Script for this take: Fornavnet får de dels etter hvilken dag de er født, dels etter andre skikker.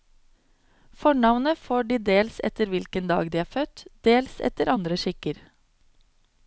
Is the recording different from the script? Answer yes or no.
no